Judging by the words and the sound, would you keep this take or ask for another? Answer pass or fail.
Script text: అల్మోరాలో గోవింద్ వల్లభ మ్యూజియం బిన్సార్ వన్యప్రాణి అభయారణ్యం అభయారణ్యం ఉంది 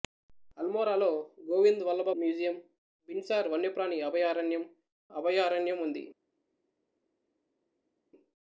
pass